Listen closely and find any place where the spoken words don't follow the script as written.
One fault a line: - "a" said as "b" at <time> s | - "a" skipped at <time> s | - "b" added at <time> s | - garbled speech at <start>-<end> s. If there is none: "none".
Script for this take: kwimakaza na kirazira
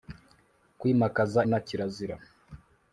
none